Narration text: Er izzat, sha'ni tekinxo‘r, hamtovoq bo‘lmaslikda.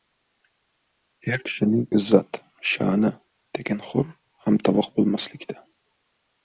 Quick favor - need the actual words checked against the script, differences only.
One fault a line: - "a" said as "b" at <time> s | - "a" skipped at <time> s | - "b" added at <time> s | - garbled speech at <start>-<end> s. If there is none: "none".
- "kishining" added at 1.5 s